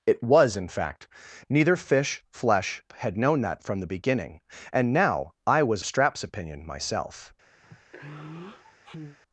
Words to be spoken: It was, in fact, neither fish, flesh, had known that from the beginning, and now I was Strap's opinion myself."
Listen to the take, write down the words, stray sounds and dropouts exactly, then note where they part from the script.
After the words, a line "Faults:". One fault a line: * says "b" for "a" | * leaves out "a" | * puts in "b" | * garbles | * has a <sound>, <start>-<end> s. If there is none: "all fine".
It was, in fact, neither fish, flesh, had known that from the beginning, and now I was Strap's opinion myself."
Faults:
* has a sigh, 7.6-9.2 s